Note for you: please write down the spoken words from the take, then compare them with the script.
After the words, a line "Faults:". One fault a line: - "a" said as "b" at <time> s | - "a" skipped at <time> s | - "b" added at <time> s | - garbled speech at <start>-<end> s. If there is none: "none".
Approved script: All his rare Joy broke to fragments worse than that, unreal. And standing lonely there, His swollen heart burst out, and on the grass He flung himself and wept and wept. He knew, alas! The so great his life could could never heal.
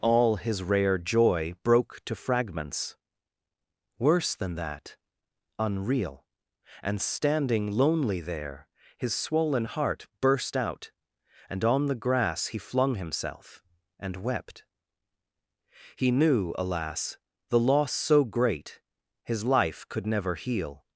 All his rare Joy broke to fragments worse than that, unreal. And standing lonely there, His swollen heart burst out, and on the grass He flung himself and wept. He knew, alas! The loss so great his life could never heal.
Faults:
- "and wept" skipped at 14.6 s
- "loss" added at 17.6 s
- "could" skipped at 20.0 s